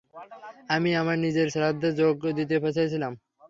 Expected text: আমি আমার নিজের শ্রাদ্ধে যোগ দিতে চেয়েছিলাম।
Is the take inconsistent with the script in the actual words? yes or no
no